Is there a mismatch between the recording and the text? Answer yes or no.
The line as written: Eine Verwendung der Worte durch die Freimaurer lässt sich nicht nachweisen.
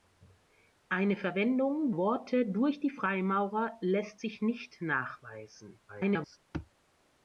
yes